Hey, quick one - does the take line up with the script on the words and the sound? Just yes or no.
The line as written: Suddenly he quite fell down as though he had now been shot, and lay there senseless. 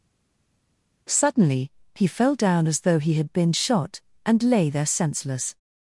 no